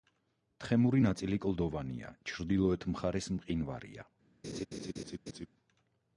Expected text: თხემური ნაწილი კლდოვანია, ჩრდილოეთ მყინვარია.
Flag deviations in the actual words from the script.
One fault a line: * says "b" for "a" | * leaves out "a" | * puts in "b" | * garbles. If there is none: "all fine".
* puts in "მხარეს"